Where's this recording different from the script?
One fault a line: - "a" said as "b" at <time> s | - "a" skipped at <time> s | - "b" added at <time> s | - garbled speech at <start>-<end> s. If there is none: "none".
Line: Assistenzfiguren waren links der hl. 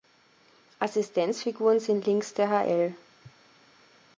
- "waren" said as "sind" at 1.8 s